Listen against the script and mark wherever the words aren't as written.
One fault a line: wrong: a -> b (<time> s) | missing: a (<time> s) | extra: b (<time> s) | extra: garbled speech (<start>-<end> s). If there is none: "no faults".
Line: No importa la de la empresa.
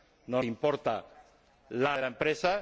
no faults